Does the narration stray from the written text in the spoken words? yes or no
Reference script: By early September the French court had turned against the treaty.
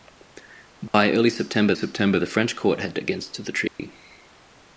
yes